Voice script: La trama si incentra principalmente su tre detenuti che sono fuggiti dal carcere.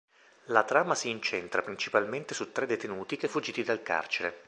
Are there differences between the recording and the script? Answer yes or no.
yes